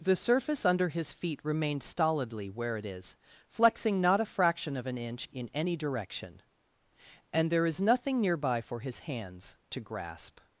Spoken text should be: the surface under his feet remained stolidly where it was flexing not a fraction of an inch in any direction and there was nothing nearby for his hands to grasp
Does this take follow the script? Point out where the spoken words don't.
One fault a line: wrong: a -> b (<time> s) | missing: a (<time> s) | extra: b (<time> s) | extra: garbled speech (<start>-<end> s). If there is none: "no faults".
wrong: was -> is (2.9 s)
wrong: was -> is (7.7 s)